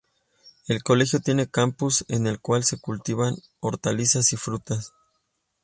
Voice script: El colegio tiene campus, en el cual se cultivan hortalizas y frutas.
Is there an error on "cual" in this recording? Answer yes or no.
no